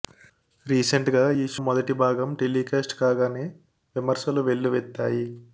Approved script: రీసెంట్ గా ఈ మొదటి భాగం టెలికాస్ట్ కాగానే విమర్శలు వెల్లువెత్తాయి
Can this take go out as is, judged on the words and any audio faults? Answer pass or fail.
pass